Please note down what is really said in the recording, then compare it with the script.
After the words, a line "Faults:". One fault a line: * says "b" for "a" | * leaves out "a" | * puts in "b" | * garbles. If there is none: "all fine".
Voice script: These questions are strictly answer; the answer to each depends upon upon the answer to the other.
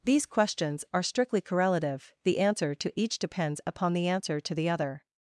These questions are strictly correlative; the answer to each depends upon the answer to the other.
Faults:
* says "correlative" for "answer"
* leaves out "upon"